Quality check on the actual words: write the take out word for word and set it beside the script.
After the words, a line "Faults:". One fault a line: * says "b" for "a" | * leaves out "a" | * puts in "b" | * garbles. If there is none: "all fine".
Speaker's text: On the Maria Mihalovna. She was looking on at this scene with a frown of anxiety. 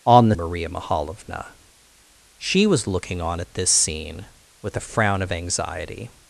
On the Maria Mihalovna. She was looking on at this scene with a frown of anxiety.
Faults:
all fine